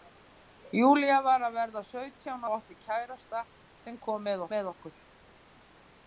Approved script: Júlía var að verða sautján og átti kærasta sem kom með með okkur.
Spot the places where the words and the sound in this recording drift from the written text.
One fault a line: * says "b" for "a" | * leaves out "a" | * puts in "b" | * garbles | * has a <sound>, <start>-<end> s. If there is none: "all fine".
all fine